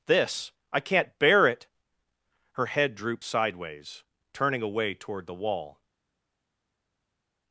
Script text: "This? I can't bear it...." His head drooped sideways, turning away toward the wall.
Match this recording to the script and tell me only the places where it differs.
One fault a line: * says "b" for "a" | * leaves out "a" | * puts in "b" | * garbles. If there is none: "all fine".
* says "Her" for "His"